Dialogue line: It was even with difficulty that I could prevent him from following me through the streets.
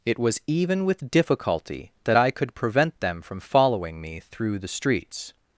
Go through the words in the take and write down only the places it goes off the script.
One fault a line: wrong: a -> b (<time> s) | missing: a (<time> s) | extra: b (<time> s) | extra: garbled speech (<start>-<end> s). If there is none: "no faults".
wrong: him -> them (3.0 s)